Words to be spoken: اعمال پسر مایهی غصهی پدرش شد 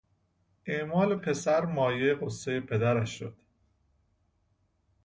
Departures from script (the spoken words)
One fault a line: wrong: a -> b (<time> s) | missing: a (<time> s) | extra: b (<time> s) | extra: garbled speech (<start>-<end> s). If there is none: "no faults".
no faults